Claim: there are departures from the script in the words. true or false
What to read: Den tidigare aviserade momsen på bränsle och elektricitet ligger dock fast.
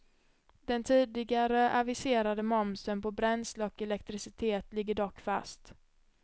false